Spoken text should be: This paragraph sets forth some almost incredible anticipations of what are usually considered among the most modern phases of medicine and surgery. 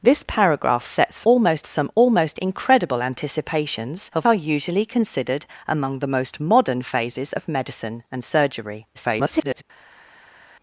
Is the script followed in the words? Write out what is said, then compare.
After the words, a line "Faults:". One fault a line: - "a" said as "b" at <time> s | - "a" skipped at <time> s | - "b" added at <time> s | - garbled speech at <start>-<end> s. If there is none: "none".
This paragraph sets almost some almost incredible anticipations of are usually considered among the most modern phases of medicine and surgery. [garbled]
Faults:
- "forth" said as "almost" at 1.2 s
- "what" skipped at 4.3 s
- garbled speech at 8.9-9.6 s